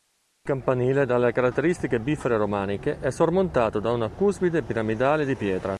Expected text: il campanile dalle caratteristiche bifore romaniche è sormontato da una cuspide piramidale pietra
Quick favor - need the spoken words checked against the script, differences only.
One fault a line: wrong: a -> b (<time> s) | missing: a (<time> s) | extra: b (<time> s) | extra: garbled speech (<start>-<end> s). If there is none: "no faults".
extra: di (5.2 s)